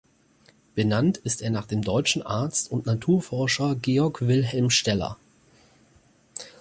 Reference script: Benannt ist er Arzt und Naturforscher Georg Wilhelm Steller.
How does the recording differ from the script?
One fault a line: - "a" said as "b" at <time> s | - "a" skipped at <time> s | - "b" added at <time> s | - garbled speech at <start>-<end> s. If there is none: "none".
- "nach dem deutschen" added at 1.5 s